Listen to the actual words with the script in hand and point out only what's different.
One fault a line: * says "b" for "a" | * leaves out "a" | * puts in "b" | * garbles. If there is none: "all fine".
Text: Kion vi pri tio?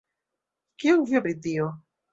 all fine